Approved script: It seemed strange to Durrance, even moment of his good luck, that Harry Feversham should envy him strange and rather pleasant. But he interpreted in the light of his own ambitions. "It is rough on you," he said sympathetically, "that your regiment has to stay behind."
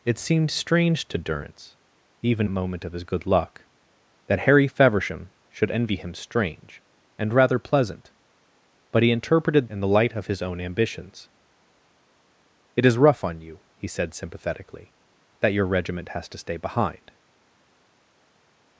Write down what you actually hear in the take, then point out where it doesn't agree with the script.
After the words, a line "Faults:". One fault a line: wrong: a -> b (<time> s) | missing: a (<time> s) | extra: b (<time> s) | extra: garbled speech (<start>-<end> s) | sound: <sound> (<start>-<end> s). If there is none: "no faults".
It seemed strange to Durrance, even moment of his good luck, that Harry Feversham should envy him strange and rather pleasant. But he interpreted in the light of his own ambitions. "It is rough on you," he said sympathetically, "that your regiment has to stay behind."
Faults:
no faults